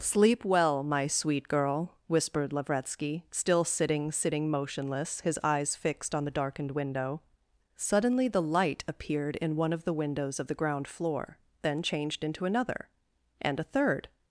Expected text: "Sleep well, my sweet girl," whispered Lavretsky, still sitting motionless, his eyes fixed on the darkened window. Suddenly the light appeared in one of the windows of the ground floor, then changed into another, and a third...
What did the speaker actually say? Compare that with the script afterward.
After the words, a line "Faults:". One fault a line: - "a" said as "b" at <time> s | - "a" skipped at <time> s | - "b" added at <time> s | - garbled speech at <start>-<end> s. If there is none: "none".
"Sleep well, my sweet girl," whispered Lavretsky, still sitting sitting motionless, his eyes fixed on the darkened window. Suddenly the light appeared in one of the windows of the ground floor, then changed into another, and a third...
Faults:
- "sitting" added at 4.1 s